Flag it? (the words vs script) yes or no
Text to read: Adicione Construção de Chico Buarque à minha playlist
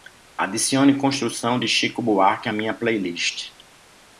no